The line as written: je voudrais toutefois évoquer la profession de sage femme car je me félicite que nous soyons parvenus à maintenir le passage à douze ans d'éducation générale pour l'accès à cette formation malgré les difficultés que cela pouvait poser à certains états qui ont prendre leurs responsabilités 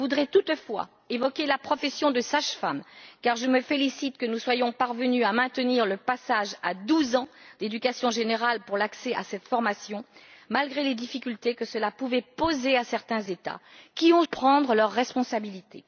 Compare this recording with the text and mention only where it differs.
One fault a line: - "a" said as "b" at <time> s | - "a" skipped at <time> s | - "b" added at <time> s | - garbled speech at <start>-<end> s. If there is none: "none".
none